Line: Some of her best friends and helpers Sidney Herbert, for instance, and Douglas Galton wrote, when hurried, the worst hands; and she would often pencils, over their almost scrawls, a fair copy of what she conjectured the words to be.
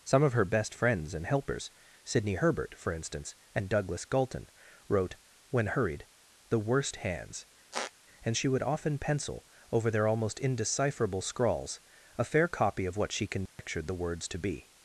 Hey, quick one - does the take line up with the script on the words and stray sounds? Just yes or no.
no